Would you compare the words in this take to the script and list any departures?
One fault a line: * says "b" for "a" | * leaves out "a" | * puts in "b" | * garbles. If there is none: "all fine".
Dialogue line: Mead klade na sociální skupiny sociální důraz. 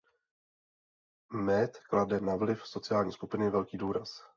* puts in "vliv"
* says "velký" for "sociální"